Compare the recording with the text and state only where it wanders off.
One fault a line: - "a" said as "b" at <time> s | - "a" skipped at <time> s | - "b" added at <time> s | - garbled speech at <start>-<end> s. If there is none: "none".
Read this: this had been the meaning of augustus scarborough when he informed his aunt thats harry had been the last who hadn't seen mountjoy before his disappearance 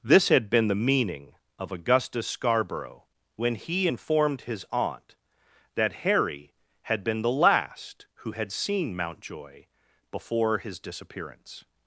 - "thats" said as "that" at 5.8 s
- "hadn't" said as "had" at 8.3 s